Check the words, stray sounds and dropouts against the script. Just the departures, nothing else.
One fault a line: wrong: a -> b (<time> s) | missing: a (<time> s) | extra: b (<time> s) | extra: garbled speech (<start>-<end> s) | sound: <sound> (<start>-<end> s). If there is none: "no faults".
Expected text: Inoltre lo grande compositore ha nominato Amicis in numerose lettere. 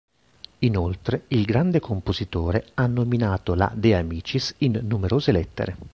wrong: lo -> il (1.3 s)
extra: la De (3.6 s)